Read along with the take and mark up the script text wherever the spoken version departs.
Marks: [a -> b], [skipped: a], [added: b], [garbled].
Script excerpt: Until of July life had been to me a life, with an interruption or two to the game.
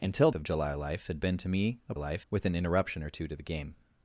Until of July life had been to me a life, with an interruption or two to the game.